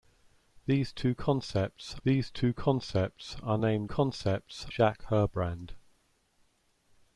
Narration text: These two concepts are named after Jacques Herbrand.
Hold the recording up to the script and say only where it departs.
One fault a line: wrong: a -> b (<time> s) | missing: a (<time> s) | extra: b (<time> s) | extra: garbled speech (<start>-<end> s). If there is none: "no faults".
extra: these two concepts (2.0 s)
wrong: after -> concepts (3.8 s)